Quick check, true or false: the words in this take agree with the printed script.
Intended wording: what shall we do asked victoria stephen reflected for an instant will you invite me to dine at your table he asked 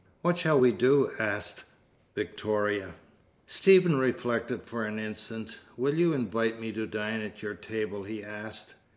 true